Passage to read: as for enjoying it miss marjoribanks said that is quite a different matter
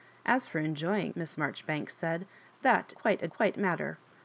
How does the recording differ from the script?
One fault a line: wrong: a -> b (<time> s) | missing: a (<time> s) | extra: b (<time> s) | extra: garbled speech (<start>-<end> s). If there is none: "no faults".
missing: it (1.1 s)
missing: is (2.9 s)
wrong: different -> quite (3.3 s)